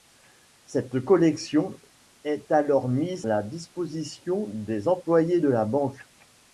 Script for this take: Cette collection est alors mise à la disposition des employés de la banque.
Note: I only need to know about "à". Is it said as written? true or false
false